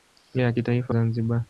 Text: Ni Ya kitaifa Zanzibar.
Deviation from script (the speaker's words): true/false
false